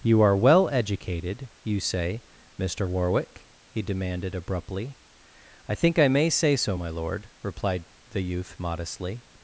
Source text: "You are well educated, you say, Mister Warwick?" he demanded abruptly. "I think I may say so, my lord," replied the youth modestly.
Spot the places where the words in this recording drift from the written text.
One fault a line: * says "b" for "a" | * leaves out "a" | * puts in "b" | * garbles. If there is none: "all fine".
all fine